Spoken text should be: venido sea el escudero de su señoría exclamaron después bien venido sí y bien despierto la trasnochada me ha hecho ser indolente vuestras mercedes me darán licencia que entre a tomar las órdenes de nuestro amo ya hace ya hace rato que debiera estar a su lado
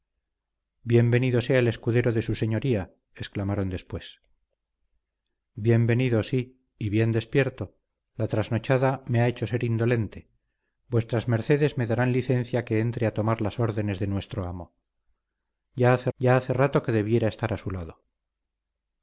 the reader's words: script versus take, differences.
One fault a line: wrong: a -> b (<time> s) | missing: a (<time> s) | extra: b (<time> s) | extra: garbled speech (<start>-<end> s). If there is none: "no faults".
no faults